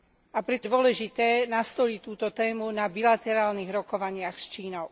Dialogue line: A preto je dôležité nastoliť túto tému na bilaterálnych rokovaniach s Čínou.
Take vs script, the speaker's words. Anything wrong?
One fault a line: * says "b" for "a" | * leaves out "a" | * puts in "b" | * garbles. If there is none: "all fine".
* leaves out "je"